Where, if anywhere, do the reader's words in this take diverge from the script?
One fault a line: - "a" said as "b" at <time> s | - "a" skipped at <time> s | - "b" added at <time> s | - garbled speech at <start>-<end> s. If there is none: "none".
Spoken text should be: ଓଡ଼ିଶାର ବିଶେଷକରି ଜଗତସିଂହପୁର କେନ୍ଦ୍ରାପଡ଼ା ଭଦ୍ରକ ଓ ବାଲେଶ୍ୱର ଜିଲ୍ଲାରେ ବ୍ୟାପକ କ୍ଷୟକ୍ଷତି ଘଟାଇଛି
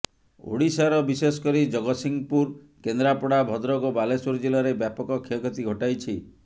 none